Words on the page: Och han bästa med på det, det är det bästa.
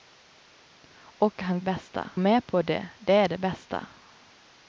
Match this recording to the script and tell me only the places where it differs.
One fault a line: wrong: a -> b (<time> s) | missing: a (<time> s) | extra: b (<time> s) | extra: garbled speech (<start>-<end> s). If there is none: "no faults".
no faults